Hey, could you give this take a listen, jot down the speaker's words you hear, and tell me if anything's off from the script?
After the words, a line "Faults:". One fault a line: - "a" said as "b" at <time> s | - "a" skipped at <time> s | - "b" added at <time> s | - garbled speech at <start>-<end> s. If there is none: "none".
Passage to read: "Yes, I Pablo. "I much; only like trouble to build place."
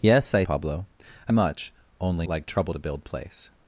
"Yes, I Pablo. "I much; only like trouble to build place."
Faults:
none